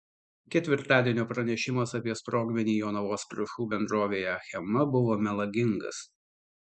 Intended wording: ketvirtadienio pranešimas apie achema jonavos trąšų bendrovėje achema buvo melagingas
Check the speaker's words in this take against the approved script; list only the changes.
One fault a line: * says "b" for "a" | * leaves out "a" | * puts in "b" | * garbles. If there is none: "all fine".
* says "sprogmenį" for "achema"